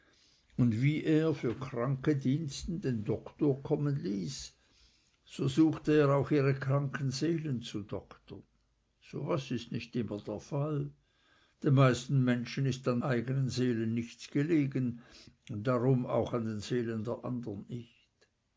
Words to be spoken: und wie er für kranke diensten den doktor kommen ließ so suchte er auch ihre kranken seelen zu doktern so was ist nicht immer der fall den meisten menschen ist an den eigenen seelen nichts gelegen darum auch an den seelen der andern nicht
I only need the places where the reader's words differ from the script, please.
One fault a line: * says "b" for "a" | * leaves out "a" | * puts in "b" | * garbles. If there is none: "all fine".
* leaves out "den"